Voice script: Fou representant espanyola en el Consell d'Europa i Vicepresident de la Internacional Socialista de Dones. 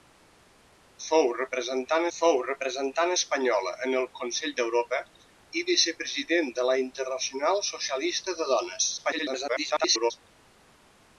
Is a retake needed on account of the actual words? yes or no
yes